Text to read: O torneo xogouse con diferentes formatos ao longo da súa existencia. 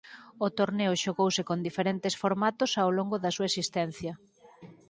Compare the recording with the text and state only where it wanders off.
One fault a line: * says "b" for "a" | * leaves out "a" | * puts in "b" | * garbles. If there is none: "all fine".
all fine